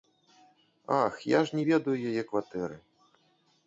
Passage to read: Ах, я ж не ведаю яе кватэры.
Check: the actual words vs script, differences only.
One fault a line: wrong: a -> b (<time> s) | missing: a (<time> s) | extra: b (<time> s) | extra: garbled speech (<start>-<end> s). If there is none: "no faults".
no faults